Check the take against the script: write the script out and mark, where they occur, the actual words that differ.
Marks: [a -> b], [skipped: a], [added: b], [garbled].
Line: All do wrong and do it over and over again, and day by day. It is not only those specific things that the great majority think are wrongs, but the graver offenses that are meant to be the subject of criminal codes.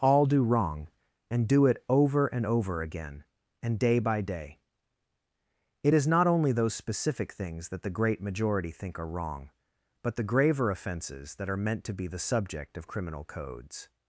All do wrong and do it over and over again, and day by day. It is not only those specific things that the great majority think are [wrongs, -> wrong] but the graver offenses that are meant to be the subject of criminal codes.